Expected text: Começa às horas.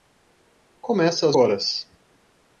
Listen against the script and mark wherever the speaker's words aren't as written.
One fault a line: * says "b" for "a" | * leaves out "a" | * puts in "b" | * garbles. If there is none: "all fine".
all fine